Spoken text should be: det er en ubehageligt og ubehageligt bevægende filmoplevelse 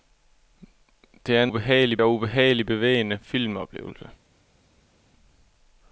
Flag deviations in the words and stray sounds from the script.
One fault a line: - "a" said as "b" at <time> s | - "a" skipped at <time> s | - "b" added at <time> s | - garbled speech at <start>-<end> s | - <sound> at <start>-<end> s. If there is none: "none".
none